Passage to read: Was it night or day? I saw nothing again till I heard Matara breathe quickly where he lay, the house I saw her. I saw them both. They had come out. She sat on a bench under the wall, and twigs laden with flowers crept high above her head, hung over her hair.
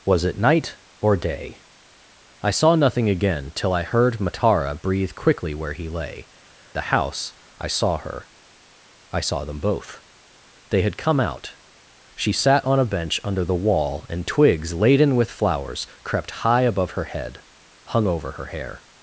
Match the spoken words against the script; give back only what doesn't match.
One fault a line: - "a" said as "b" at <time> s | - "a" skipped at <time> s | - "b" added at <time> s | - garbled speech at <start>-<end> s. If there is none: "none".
none